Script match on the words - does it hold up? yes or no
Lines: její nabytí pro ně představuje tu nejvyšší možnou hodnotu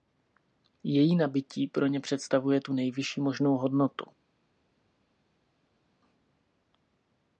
yes